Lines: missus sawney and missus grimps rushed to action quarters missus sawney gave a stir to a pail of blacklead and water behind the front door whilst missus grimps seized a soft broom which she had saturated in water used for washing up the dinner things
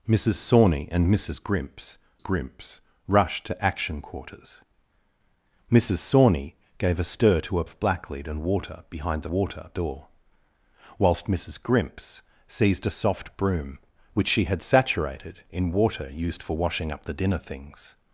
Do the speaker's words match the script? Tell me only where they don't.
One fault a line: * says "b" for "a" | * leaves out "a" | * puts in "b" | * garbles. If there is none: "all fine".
* puts in "grimps"
* leaves out "pail"
* says "water" for "front"